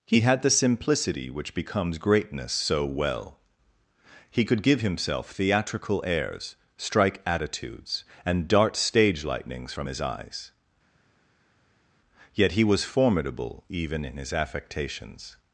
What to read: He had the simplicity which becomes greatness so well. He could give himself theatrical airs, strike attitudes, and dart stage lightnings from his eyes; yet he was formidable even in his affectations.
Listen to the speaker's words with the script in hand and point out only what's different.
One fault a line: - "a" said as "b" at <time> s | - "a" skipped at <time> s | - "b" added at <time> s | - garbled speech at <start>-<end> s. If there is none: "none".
none